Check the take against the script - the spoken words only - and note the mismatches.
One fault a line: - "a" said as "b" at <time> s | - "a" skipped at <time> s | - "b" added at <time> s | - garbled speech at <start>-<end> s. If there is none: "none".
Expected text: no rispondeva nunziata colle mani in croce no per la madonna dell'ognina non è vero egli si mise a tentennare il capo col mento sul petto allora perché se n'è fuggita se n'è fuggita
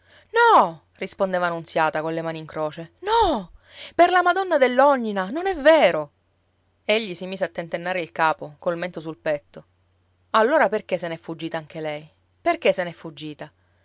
- "anche lei perché" added at 11.6 s